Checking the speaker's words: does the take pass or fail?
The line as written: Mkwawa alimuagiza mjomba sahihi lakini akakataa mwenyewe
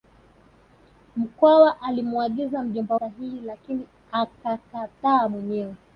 pass